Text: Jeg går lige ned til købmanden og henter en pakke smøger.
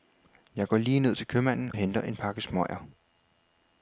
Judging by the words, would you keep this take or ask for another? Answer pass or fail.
fail